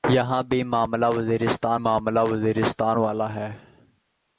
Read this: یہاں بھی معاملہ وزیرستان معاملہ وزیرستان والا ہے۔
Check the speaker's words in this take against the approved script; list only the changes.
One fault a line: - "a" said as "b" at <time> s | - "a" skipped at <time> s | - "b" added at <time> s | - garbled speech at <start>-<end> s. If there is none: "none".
none